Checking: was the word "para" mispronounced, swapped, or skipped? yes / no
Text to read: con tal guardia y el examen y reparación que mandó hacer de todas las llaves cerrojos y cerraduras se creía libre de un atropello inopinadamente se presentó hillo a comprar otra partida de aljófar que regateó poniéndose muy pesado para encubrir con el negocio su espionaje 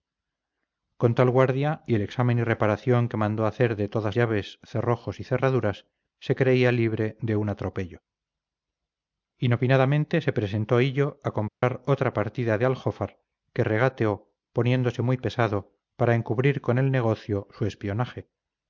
no